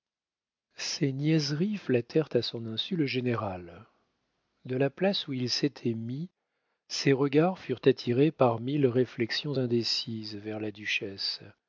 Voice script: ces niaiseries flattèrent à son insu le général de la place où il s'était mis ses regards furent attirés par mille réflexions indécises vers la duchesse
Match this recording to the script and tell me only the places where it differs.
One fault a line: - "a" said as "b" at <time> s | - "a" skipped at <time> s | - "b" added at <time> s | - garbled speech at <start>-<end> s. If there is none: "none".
none